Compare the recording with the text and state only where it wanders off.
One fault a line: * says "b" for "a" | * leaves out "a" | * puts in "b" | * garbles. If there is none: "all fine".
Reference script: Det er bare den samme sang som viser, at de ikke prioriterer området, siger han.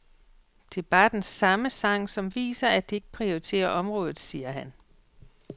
all fine